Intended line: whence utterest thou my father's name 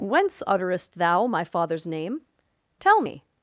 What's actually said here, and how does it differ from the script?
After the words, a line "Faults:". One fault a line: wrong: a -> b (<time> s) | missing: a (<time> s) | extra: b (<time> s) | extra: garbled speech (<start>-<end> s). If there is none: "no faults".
whence utterest thou my father's name tell me
Faults:
extra: tell me (2.8 s)